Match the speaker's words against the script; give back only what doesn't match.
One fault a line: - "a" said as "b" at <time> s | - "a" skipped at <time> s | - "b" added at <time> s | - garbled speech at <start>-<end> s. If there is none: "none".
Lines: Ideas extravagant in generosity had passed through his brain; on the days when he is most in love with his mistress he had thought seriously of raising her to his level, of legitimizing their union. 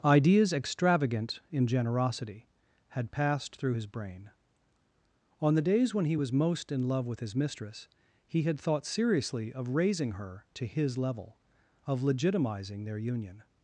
- "is" said as "was" at 6.1 s